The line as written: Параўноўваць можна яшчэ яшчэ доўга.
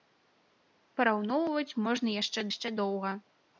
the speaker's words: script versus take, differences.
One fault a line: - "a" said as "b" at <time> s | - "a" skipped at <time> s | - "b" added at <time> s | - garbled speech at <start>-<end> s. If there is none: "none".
none